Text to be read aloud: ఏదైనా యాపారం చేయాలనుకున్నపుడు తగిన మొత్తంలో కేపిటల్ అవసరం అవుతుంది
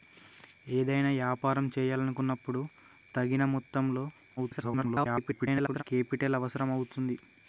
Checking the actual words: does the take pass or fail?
fail